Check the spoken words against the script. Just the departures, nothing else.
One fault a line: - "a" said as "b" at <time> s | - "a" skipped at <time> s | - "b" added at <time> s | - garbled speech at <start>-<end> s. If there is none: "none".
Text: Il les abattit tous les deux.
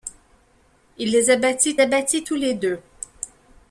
- "abattit" added at 1.8 s